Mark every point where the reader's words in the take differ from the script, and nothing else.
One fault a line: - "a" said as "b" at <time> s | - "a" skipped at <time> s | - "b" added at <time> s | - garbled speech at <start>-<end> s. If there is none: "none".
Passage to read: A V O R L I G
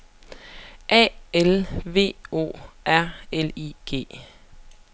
- "L" added at 1.3 s